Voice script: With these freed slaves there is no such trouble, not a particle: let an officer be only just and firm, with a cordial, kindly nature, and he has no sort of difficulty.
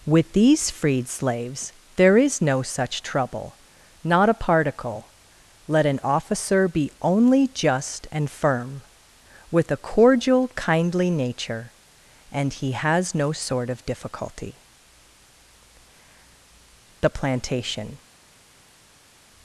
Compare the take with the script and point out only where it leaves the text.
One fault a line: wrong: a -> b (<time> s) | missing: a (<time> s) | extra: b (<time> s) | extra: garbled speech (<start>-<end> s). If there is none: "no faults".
extra: The plantation (17.0 s)